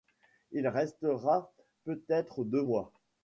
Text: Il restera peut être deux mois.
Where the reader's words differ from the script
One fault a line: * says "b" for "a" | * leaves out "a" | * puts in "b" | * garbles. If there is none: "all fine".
all fine